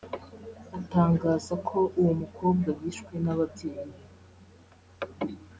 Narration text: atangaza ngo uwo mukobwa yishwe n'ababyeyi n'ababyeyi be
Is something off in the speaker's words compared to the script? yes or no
yes